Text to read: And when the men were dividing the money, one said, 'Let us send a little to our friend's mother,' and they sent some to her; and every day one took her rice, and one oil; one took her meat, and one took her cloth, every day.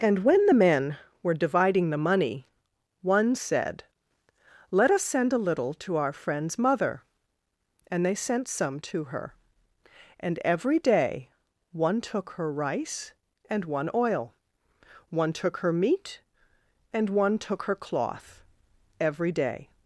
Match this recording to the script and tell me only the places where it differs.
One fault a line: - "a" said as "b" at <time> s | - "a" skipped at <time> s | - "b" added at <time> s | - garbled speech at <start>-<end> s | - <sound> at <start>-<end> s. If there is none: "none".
none